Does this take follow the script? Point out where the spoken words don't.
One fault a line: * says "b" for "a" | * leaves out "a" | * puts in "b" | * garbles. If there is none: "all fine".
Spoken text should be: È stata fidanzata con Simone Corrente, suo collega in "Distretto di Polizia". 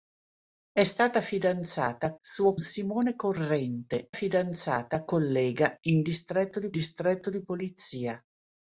* says "suo" for "con"
* says "fidanzata" for "suo"
* puts in "distretto di"